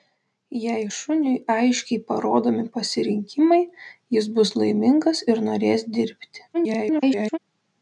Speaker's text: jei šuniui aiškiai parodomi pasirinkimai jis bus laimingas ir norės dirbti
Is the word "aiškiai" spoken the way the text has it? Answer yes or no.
yes